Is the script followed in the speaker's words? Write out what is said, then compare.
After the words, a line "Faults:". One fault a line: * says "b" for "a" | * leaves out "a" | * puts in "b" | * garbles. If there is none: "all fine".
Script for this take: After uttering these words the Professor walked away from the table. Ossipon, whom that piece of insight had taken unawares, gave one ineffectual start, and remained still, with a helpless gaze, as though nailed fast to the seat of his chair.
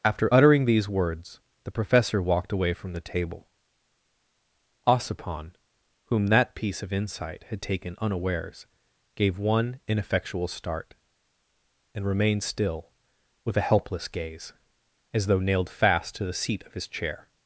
After uttering these words the Professor walked away from the table. Ossipon, whom that piece of insight had taken unawares, gave one ineffectual start, and remained still, with a helpless gaze, as though nailed fast to the seat of his chair.
Faults:
all fine